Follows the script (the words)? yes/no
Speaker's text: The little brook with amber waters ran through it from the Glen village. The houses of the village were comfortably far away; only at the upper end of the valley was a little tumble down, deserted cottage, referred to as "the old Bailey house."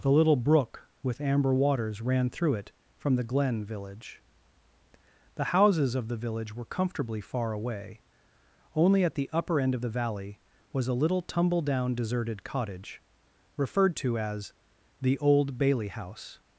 yes